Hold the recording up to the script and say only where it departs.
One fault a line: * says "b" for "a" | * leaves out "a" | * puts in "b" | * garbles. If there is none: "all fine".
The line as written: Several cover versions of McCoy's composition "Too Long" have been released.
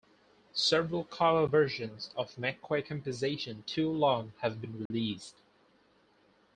all fine